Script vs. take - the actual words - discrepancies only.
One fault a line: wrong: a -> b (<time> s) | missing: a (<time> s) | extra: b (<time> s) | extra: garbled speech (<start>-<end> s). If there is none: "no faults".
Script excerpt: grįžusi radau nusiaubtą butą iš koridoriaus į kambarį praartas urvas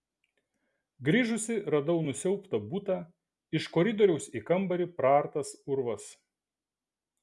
no faults